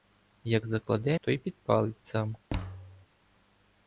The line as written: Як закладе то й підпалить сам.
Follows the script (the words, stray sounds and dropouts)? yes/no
no